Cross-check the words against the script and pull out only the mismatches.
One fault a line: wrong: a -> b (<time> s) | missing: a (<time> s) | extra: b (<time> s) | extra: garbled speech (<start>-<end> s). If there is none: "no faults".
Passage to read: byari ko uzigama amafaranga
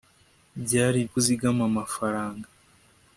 no faults